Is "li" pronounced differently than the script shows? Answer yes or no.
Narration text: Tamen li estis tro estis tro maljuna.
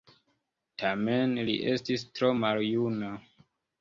no